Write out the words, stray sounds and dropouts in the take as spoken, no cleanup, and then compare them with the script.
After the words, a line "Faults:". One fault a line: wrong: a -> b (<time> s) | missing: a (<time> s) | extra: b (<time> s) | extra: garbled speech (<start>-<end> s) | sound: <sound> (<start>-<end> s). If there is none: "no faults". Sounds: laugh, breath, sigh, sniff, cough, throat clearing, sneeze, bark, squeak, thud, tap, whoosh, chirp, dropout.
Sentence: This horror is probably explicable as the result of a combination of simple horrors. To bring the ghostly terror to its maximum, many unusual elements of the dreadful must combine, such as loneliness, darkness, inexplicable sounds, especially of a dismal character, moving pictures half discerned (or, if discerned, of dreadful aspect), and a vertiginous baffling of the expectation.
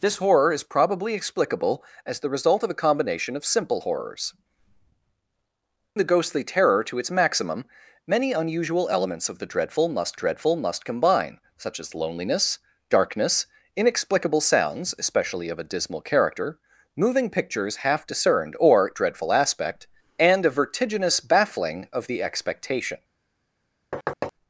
This horror is probably explicable as the result of a combination of simple horrors. The ghostly terror to its maximum, many unusual elements of the dreadful must dreadful must combine, such as loneliness, darkness, inexplicable sounds, especially of a dismal character, moving pictures half discerned (or, dreadful aspect), and a vertiginous baffling of the expectation.
Faults:
missing: To bring (4.3 s)
extra: dreadful must (10.1 s)
missing: if discerned of (18.9 s)
sound: thud (23.9-24.3 s)